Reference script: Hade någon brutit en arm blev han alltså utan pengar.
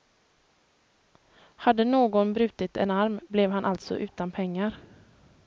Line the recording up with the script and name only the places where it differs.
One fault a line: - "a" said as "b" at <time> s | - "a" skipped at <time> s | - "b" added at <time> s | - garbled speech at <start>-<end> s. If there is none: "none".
none